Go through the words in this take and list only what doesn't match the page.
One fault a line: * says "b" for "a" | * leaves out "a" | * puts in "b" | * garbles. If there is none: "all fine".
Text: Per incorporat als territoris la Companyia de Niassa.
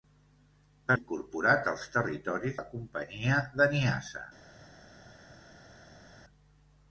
all fine